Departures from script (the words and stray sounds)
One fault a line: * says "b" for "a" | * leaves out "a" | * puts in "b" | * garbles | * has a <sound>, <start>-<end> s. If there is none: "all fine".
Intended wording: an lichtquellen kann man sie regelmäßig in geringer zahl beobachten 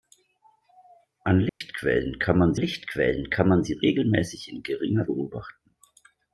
* has a dropout, 1.5-1.6 s
* puts in "lichtquellen kann man"
* leaves out "zahl"